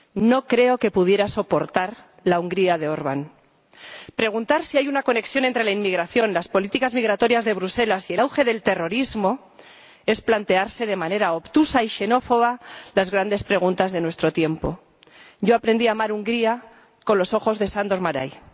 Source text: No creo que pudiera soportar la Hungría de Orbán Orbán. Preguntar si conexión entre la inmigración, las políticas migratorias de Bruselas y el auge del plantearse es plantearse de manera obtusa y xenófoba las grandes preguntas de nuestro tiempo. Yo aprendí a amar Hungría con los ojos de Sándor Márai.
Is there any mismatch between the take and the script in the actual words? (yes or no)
yes